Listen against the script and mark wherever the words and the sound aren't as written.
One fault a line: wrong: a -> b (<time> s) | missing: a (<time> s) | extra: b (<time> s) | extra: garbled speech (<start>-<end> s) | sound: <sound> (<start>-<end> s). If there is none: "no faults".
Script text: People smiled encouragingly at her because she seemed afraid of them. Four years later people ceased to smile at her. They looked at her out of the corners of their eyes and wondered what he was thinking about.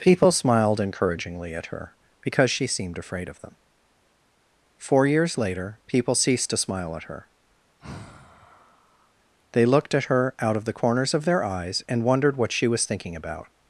sound: sigh (7.8-9.1 s)
wrong: he -> she (12.5 s)